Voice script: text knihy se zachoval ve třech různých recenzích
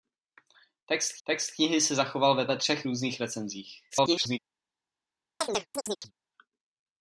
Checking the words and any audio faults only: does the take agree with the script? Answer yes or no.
no